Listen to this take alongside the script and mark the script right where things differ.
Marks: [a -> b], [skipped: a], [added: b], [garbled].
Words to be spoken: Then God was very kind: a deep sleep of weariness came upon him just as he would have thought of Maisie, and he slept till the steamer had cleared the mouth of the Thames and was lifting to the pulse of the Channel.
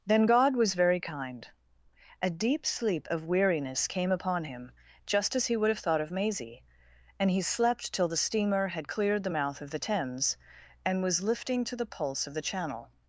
Then God was very kind: a deep sleep of weariness came upon him just as he would have thought of Maisie, and he slept till the steamer had cleared the mouth of the Thames and was lifting to the pulse of the Channel.